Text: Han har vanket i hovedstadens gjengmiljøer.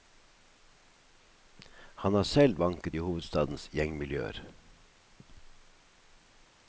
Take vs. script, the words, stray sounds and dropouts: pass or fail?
fail